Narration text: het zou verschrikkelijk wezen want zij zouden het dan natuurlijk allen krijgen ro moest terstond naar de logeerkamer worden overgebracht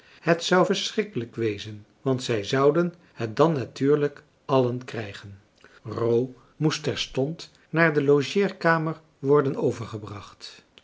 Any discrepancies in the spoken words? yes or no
no